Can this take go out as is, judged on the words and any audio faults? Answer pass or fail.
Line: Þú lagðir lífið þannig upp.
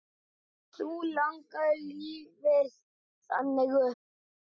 pass